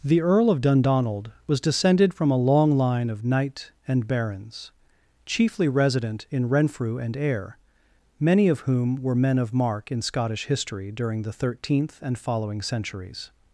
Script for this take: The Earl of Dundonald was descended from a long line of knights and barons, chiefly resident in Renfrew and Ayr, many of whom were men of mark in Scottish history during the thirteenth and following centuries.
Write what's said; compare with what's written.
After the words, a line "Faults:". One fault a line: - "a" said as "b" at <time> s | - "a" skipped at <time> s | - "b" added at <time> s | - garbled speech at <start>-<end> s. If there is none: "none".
The Earl of Dundonald was descended from a long line of knight and barons, chiefly resident in Renfrew and Ayr, many of whom were men of mark in Scottish history during the thirteenth and following centuries.
Faults:
- "knights" said as "knight" at 3.2 s